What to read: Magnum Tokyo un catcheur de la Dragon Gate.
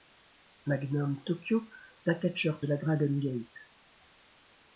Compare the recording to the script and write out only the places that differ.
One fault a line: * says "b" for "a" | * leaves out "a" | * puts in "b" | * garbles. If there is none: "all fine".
all fine